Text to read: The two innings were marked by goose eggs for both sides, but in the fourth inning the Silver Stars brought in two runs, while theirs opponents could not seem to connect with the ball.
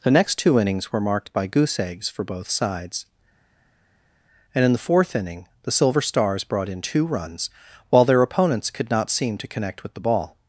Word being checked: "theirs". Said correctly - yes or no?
no